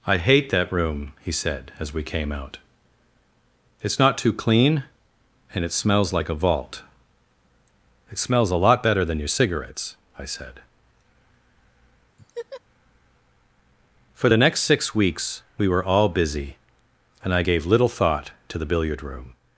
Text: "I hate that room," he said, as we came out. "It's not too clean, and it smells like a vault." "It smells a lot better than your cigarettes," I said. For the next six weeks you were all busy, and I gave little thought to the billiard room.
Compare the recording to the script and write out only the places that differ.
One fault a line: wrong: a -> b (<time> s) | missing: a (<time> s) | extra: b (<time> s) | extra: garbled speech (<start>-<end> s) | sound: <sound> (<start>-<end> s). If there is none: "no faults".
sound: laugh (12.2-12.6 s)
wrong: you -> we (15.6 s)